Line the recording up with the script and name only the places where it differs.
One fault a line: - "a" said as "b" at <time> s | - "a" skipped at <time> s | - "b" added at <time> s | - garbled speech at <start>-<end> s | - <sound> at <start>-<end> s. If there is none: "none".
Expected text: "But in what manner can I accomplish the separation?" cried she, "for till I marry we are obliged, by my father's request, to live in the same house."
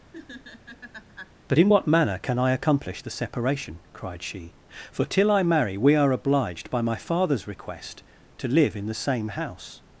- laugh at 0.1-1.3 s